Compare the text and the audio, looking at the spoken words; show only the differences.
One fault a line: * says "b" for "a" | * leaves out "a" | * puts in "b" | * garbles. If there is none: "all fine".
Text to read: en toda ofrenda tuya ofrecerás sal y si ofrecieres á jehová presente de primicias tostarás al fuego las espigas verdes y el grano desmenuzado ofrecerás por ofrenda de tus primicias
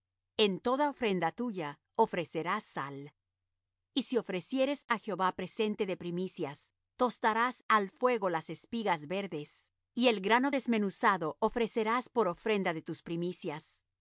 all fine